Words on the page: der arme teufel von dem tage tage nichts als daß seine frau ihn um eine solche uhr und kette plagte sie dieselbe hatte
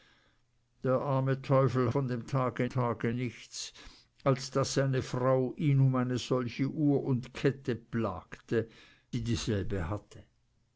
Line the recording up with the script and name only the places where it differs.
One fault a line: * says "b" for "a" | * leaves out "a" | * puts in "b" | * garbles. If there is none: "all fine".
all fine